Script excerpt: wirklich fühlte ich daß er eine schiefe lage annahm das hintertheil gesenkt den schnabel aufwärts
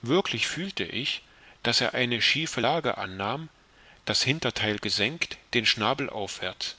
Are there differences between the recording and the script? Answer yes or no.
no